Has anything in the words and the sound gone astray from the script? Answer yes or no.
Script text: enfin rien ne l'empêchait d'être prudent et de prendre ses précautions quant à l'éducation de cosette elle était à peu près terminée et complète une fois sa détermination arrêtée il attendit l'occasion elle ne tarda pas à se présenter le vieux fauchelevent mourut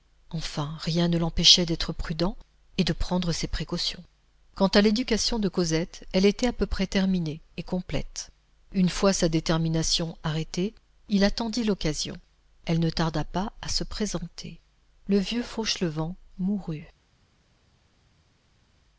no